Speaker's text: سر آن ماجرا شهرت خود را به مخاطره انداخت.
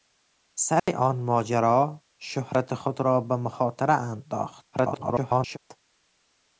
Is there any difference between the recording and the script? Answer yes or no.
yes